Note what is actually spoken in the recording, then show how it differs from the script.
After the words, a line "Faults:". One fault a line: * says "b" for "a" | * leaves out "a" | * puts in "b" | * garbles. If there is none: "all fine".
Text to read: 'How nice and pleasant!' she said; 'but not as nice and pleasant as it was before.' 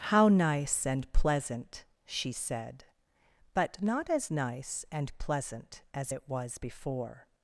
'How nice and pleasant!' she said; 'but not as nice and pleasant as it was before.'
Faults:
all fine